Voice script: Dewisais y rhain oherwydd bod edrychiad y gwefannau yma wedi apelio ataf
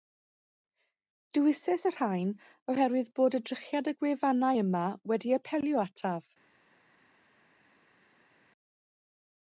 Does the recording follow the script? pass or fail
pass